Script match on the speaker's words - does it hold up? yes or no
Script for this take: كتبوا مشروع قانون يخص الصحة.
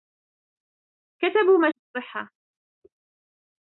no